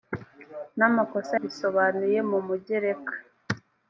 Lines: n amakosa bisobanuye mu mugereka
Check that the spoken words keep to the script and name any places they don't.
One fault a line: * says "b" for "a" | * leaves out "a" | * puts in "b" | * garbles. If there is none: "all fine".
all fine